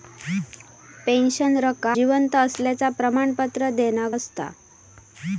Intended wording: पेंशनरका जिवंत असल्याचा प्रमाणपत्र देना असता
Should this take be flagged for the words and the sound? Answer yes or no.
no